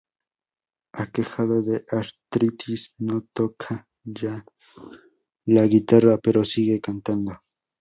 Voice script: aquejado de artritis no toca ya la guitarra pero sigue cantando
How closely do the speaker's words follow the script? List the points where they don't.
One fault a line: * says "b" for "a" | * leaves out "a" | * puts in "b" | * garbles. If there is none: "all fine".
all fine